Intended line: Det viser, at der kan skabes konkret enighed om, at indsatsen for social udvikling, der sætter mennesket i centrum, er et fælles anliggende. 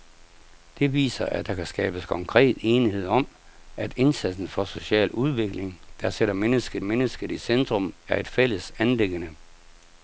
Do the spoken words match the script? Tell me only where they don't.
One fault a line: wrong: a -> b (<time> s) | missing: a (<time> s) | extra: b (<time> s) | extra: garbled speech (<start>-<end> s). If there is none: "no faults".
extra: mennesket (6.8 s)